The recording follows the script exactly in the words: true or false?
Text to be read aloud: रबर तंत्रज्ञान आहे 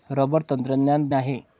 true